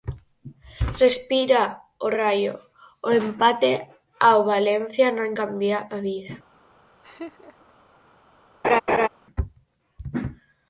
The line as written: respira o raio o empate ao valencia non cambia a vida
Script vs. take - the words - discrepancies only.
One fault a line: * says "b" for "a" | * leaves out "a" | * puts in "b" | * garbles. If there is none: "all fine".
all fine